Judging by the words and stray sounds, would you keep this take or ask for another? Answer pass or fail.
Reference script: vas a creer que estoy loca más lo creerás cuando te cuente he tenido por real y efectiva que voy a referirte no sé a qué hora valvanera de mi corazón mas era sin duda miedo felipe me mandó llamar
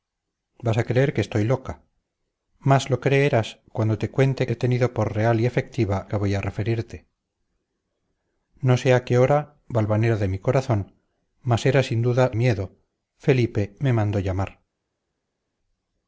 pass